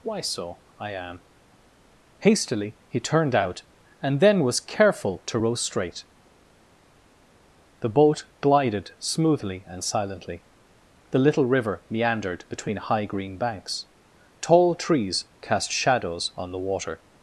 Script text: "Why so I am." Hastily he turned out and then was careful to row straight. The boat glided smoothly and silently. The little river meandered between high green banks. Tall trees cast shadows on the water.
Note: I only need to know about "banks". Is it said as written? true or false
true